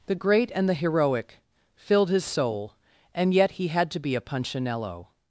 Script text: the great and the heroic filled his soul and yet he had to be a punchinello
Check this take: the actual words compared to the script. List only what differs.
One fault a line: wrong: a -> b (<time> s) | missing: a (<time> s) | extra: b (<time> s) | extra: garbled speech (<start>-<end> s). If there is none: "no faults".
no faults